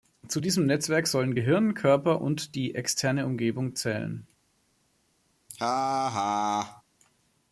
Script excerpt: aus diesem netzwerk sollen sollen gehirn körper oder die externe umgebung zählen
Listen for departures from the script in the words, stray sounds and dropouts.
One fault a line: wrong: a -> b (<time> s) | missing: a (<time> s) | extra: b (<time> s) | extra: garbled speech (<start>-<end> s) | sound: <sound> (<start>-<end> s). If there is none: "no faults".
wrong: aus -> zu (0.3 s)
missing: sollen (1.4 s)
wrong: oder -> und (2.2 s)
sound: laugh (5.5-6.8 s)